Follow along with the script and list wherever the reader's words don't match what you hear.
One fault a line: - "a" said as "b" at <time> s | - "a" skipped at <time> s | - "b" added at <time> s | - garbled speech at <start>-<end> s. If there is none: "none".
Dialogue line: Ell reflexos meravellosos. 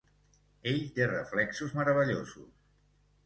- "té" added at 1.0 s